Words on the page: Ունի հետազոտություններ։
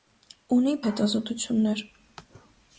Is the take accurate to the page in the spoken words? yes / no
yes